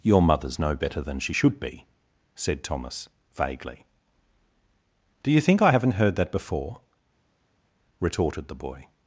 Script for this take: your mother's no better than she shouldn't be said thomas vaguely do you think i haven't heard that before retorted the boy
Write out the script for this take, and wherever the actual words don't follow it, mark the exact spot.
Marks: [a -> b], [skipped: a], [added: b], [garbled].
your mother's no better than she [shouldn't -> should] be said thomas vaguely do you think i haven't heard that before retorted the boy